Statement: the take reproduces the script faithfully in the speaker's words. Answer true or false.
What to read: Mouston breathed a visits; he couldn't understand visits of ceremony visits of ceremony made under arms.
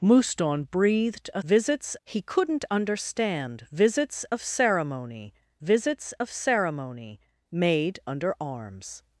true